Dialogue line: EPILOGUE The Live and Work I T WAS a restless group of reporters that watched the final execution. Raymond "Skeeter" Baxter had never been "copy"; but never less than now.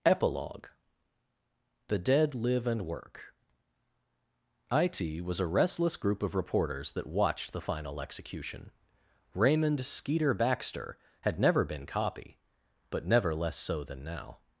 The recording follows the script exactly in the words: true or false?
false